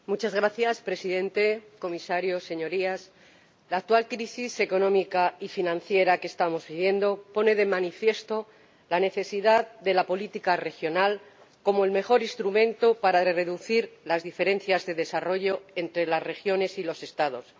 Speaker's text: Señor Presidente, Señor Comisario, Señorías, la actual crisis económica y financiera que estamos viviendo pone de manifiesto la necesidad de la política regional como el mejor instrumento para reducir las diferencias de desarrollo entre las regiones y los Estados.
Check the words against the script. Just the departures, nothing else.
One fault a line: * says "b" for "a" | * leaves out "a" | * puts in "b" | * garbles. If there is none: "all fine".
all fine